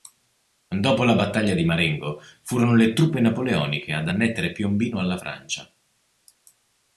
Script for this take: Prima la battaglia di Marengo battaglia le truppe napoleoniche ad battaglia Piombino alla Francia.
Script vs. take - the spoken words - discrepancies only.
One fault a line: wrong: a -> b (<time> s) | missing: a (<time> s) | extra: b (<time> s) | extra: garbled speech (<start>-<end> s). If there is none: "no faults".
wrong: Prima -> Dopo (0.7 s)
wrong: battaglia -> furono (2.4 s)
wrong: battaglia -> annettere (4.0 s)